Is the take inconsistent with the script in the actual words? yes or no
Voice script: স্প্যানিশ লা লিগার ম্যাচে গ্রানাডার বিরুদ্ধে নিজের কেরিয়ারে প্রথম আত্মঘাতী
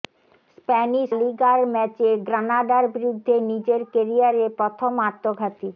yes